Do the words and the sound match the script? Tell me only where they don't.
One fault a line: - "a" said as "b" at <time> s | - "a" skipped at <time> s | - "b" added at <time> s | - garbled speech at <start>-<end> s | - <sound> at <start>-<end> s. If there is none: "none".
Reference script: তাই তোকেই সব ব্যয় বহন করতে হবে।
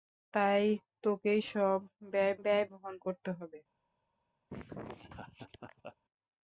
- "ব্যয়" added at 2.4 s
- laugh at 4.5-6.0 s